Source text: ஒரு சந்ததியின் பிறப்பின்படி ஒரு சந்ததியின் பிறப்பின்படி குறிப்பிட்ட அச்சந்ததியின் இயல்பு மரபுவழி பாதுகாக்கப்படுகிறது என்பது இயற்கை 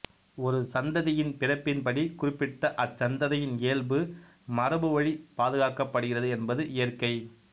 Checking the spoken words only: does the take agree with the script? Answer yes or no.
no